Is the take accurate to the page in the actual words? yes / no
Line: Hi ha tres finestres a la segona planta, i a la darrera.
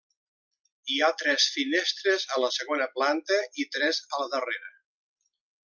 no